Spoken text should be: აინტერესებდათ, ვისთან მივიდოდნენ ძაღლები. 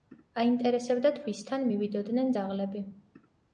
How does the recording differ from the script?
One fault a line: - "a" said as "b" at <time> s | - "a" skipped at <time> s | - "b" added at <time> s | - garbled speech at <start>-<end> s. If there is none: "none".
none